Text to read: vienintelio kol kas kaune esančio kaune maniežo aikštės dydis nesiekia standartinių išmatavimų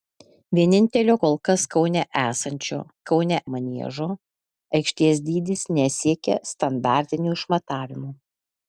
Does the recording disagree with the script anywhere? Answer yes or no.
no